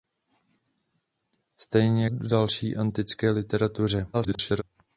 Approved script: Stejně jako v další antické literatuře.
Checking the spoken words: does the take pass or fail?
fail